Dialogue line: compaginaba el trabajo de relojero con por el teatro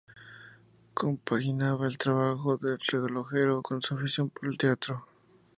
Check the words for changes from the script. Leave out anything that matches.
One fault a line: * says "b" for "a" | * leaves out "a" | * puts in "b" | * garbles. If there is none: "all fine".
* puts in "su afición"